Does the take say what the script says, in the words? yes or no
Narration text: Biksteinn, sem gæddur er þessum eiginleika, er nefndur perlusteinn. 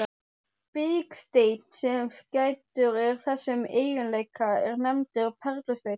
yes